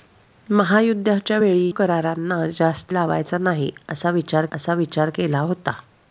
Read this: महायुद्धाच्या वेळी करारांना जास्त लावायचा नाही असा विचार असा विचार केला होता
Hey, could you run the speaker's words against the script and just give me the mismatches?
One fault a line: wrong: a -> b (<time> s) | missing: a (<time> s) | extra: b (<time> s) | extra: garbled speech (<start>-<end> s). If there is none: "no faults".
no faults